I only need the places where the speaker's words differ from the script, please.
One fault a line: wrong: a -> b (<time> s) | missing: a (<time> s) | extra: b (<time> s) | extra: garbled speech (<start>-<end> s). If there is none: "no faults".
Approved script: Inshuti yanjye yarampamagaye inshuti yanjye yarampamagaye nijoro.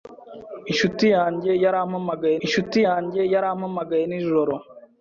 no faults